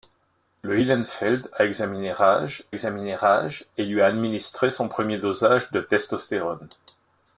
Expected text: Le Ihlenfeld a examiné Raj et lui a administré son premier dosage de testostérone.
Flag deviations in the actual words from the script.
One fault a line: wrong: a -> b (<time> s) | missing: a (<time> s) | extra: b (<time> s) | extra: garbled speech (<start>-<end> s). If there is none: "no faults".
extra: examiné Raj (2.7 s)